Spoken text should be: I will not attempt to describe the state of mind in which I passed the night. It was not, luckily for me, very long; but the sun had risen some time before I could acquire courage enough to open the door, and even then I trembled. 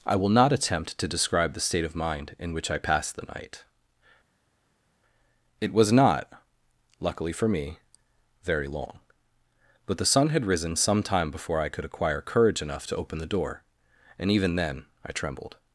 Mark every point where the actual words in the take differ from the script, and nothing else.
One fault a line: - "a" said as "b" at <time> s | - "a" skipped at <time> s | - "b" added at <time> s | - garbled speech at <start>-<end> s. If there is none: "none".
none